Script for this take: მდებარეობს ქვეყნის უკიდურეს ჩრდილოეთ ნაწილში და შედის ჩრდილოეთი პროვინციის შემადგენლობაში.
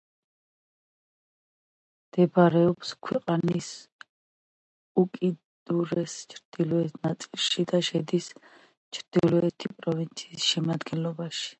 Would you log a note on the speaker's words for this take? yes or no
no